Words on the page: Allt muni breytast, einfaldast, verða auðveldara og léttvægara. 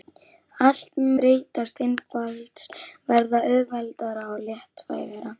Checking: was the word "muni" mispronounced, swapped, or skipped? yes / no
yes